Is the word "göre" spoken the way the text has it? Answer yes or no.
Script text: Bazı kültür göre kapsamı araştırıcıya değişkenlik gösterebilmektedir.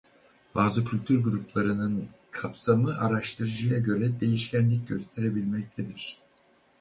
no